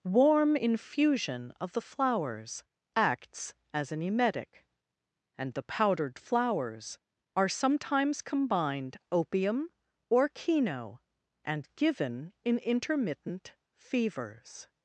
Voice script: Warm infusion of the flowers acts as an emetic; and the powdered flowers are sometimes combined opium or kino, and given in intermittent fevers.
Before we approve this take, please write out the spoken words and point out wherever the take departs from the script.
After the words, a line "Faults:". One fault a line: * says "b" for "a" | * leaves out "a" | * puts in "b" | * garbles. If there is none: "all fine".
Warm infusion of the flowers acts as an emetic; and the powdered flowers are sometimes combined opium or kino, and given in intermittent fevers.
Faults:
all fine